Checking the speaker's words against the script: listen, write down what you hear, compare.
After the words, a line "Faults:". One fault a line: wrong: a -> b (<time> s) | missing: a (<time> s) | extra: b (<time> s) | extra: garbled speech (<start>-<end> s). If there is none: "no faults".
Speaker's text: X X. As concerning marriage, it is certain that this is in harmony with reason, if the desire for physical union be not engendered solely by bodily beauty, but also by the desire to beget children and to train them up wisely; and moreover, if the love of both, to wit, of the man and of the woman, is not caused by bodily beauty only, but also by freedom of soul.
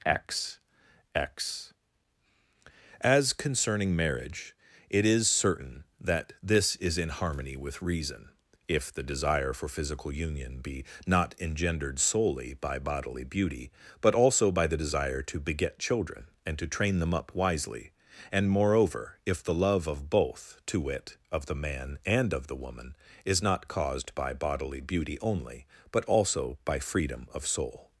X X. As concerning marriage, it is certain that this is in harmony with reason, if the desire for physical union be not engendered solely by bodily beauty, but also by the desire to beget children and to train them up wisely; and moreover, if the love of both, to wit, of the man and of the woman, is not caused by bodily beauty only, but also by freedom of soul.
Faults:
no faults